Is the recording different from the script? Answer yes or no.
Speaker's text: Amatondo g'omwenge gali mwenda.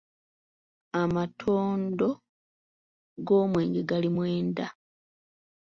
no